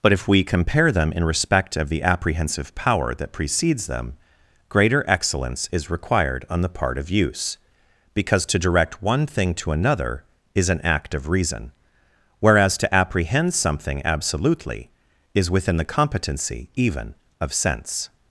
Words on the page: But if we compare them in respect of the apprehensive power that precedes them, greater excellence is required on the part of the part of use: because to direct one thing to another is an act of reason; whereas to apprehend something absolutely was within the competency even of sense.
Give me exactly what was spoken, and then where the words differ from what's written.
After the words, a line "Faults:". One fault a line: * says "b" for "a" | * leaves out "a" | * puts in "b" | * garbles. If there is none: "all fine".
But if we compare them in respect of the apprehensive power that precedes them, greater excellence is required on the part of use: because to direct one thing to another is an act of reason; whereas to apprehend something absolutely is within the competency even of sense.
Faults:
* leaves out "the part of"
* says "is" for "was"